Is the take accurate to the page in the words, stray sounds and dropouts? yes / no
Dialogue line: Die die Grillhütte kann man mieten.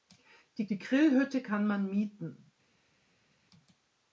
yes